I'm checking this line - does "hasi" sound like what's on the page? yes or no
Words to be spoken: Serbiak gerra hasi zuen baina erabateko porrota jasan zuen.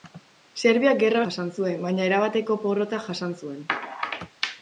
no